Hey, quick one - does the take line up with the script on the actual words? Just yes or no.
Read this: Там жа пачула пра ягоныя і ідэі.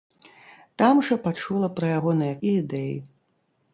yes